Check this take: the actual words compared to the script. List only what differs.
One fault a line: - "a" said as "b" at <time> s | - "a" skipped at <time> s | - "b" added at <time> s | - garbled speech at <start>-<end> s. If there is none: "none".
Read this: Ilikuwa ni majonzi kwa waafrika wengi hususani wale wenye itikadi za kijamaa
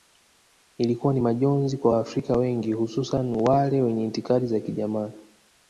none